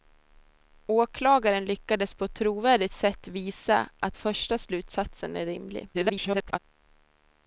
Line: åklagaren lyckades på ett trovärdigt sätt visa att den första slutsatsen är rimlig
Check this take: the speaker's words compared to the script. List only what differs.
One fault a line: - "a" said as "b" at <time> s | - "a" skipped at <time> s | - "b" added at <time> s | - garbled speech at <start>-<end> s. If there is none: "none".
- "den" skipped at 4.2 s
- garbled speech at 5.9-6.6 s